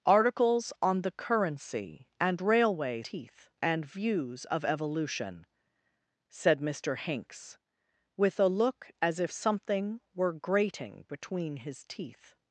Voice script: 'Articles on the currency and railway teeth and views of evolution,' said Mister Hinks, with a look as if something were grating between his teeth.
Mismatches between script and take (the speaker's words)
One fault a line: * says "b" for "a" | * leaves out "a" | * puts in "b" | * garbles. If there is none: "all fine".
all fine